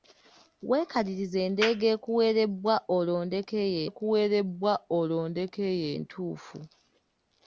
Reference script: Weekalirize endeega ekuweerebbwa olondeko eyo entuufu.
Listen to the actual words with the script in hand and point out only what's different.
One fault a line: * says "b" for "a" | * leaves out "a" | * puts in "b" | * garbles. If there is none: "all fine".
* puts in "ekuweerebbwa olondeko eyo"